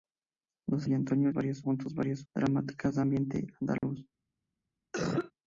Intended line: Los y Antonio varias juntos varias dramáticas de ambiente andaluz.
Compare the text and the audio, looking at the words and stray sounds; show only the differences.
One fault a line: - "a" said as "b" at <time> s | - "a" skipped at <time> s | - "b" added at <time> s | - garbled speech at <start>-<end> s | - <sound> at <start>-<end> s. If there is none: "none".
- dropout at 3.8-3.8 s
- cough at 4.9-5.3 s